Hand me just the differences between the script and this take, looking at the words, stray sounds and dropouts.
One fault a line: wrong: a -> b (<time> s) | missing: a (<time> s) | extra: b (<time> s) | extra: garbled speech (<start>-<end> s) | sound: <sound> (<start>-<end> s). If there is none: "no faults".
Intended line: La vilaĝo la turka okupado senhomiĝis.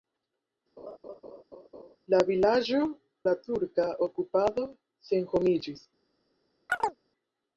sound: laugh (0.8-2.0 s)
sound: chirp (6.7-7.0 s)